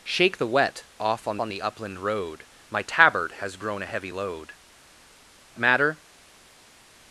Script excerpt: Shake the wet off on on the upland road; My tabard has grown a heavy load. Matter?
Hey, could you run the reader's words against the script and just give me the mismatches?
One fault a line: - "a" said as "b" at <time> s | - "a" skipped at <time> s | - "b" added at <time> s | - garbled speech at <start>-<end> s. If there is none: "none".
none